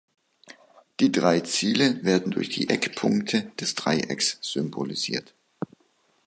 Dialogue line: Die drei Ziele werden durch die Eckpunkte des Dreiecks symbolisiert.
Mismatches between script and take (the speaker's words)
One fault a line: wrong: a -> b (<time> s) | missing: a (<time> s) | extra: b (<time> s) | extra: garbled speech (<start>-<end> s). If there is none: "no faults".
no faults